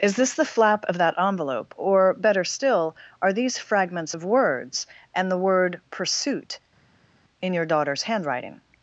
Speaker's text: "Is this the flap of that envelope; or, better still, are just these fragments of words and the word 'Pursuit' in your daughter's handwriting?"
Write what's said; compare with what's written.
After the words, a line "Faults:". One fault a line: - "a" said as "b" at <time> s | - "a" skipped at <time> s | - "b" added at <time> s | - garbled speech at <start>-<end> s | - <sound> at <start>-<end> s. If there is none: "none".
"Is this the flap of that envelope; or, better still, are these fragments of words and the word 'Pursuit' in your daughter's handwriting?"
Faults:
- "just" skipped at 3.3 s